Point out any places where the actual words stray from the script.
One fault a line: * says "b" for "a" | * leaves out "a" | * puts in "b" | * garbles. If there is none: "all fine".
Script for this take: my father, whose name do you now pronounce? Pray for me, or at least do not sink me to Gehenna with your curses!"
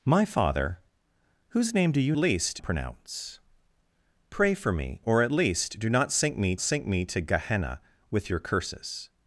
* says "least" for "now"
* puts in "sink me"